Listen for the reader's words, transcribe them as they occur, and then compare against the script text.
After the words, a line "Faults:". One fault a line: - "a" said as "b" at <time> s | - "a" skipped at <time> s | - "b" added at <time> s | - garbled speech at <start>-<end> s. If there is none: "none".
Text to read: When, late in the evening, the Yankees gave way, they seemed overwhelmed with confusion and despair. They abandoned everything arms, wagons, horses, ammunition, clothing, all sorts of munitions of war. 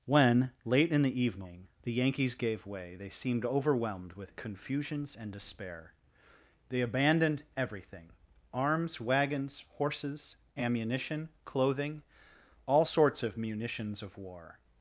When, late in the evening, the Yankees gave way, they seemed overwhelmed with confusions and despair. They abandoned everything arms, wagons, horses, ammunition, clothing, all sorts of munitions of war.
Faults:
- "confusion" said as "confusions" at 4.3 s